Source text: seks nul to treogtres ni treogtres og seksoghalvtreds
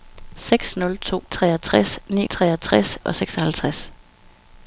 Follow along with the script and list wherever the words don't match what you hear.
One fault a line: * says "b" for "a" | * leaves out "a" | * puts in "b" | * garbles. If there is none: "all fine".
all fine